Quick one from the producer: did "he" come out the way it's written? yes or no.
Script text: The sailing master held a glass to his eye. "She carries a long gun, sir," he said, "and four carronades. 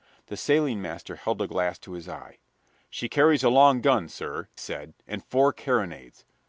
no